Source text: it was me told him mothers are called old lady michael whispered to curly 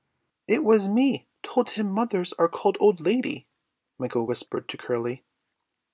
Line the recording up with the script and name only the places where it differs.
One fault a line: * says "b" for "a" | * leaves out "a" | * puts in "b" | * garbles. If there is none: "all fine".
all fine